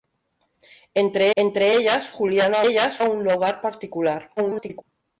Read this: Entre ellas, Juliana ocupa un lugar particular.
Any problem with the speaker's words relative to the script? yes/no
yes